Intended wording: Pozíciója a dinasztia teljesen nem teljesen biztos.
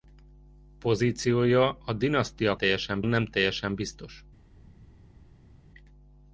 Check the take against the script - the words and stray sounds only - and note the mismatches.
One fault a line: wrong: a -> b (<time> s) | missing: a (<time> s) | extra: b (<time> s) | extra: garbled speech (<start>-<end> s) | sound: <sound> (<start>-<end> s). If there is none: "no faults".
no faults